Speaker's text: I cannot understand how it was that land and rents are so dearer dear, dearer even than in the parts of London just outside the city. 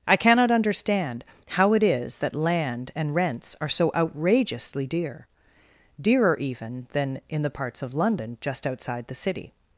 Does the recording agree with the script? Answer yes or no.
no